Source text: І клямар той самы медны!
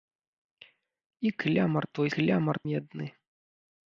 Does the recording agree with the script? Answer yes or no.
no